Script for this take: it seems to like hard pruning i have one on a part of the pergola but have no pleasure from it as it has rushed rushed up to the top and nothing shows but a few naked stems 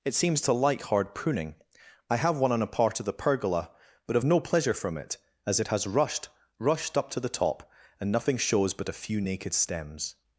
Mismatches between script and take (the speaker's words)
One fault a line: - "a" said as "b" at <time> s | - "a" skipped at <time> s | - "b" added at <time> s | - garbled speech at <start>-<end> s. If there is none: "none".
none